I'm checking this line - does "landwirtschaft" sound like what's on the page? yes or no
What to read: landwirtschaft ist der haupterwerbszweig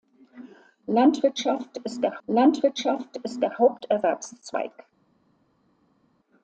yes